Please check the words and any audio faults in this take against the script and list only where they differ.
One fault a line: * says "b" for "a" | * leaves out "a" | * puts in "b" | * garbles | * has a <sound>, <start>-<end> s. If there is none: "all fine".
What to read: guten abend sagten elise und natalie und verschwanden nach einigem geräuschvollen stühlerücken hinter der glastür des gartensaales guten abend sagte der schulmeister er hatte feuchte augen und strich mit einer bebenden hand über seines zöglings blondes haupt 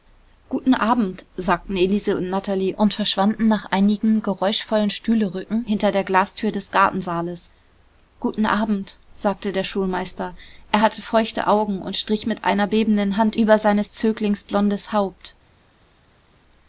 all fine